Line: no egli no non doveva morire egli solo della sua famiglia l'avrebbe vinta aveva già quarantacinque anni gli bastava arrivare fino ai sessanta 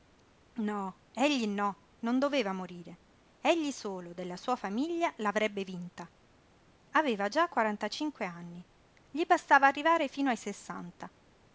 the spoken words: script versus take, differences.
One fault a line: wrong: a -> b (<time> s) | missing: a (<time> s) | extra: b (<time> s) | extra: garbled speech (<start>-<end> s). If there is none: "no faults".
no faults